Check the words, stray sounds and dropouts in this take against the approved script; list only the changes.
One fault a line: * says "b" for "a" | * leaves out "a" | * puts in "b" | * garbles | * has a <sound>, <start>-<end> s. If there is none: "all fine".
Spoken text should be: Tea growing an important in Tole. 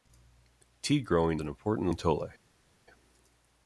all fine